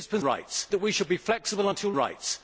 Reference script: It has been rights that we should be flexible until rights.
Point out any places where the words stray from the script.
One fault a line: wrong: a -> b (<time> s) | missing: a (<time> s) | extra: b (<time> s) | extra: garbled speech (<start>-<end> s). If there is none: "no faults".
no faults